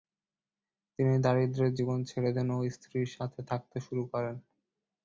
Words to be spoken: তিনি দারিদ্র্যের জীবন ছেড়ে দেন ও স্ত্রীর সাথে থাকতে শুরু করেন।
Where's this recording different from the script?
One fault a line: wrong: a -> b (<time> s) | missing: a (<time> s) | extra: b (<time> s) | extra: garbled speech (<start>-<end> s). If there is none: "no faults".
no faults